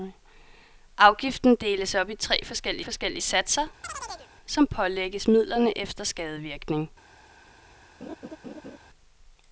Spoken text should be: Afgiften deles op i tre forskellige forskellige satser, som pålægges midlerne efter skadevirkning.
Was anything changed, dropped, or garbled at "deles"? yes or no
no